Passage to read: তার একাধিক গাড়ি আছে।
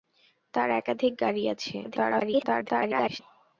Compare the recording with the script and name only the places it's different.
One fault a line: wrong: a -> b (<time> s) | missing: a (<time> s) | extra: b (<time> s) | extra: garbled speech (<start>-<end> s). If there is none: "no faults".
extra: garbled speech (1.8-3.2 s)